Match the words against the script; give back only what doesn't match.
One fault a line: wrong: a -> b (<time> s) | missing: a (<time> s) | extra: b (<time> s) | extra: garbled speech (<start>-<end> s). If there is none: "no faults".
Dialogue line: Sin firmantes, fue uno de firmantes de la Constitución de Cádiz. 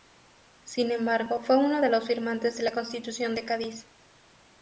wrong: firmantes -> embargo (0.9 s)
extra: los (1.9 s)